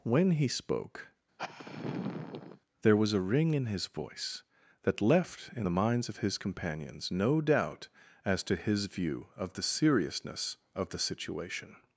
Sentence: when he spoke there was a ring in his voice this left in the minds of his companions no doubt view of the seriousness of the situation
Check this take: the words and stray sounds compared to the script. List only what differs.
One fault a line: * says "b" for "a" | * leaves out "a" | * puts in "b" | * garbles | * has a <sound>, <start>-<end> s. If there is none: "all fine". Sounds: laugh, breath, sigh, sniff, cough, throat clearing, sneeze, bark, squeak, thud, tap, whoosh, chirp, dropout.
* has a sigh, 1.4-2.6 s
* says "that" for "this"
* puts in "as to his"